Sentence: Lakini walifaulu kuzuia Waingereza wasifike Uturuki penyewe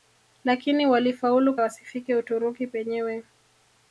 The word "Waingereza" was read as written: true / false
false